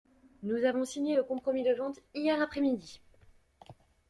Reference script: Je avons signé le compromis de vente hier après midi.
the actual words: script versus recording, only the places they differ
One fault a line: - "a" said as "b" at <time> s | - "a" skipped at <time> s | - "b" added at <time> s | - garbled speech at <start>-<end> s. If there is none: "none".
- "Je" said as "Nous" at 0.4 s